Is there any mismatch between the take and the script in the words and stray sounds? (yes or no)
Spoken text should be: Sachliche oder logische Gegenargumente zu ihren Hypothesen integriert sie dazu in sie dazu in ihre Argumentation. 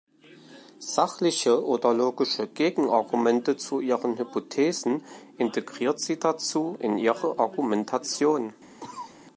yes